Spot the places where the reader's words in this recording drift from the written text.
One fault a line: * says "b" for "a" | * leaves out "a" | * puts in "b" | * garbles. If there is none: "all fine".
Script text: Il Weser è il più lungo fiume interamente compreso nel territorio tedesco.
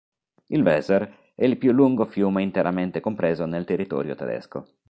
all fine